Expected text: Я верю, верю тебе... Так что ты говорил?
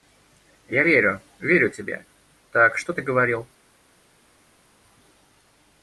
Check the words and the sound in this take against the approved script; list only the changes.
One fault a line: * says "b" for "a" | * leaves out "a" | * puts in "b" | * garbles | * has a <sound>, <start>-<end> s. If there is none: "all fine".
all fine